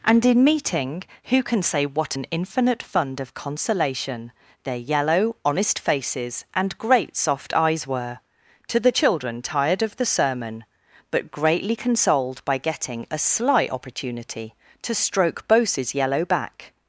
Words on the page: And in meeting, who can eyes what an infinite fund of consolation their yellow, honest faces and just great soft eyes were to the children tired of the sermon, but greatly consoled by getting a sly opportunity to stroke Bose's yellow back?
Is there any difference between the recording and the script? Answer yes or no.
yes